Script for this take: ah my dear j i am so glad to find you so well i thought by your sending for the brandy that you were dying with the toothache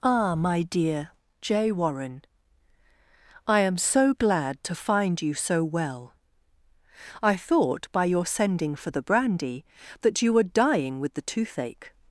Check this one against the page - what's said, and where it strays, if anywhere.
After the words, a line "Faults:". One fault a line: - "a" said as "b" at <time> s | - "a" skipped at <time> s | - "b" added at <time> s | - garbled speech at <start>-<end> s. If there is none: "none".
ah my dear j warren i am so glad to find you so well i thought by your sending for the brandy that you were dying with the toothache
Faults:
- "warren" added at 1.7 s